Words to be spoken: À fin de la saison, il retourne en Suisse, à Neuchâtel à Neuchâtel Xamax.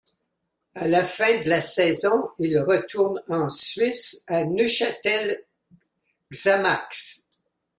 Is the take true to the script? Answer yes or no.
no